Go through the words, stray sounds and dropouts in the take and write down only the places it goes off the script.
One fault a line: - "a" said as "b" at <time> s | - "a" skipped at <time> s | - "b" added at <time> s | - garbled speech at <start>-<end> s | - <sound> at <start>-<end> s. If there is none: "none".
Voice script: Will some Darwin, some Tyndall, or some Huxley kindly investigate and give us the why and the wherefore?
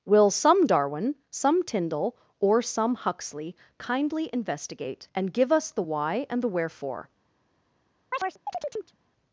- chirp at 8.1-9.0 s